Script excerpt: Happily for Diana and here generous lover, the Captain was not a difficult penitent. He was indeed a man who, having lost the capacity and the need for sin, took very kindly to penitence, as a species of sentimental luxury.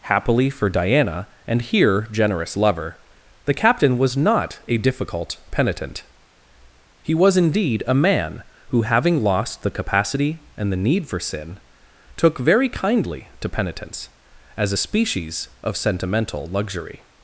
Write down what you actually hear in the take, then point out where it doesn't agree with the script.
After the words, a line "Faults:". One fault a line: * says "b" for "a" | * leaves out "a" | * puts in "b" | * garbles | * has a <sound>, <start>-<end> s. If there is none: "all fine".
Happily for Diana and here generous lover, the Captain was not a difficult penitent. He was indeed a man who, having lost the capacity and the need for sin, took very kindly to penitence, as a species of sentimental luxury.
Faults:
all fine